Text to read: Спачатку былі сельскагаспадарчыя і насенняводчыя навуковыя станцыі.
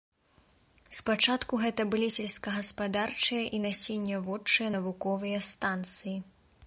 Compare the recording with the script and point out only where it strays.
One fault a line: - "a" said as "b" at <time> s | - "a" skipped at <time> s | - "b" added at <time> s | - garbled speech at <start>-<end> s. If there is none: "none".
- "гэта" added at 1.6 s